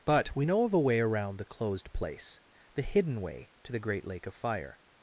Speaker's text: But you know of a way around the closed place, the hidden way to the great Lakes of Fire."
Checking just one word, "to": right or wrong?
right